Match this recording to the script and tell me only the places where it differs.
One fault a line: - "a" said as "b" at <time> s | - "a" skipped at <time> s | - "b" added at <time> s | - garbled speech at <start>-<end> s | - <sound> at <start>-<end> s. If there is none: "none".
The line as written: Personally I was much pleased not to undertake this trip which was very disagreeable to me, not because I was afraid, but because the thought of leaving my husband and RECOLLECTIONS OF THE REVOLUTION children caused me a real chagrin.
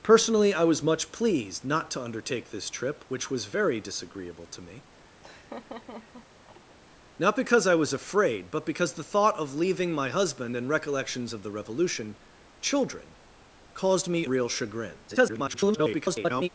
- laugh at 5.2-6.8 s
- "a" skipped at 14.2 s
- garbled speech at 15.1-16.5 s